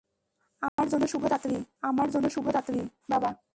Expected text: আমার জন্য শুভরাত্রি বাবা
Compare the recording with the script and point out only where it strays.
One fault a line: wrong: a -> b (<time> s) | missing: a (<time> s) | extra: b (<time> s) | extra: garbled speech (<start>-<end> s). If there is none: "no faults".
extra: আমার জন্য শুভরাত্রি (1.8 s)